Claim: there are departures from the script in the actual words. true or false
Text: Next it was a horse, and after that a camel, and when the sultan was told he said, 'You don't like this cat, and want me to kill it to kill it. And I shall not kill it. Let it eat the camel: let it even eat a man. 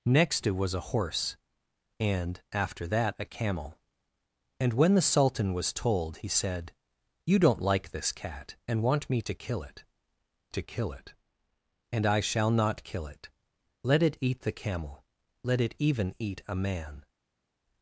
false